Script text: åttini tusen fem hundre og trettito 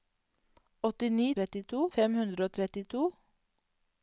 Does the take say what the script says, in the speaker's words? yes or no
no